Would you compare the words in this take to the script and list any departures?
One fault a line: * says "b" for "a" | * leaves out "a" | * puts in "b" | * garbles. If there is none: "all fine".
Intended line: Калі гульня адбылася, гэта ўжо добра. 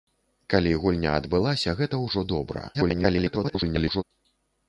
* garbles